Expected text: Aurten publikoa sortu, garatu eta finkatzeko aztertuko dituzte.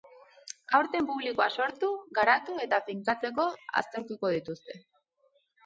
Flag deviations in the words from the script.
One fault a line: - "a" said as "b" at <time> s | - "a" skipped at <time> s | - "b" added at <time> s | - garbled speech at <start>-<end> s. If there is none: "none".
none